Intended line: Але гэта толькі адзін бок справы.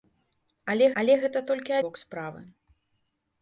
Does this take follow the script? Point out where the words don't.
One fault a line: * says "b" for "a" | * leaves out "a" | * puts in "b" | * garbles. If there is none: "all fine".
* puts in "але"
* leaves out "адзін"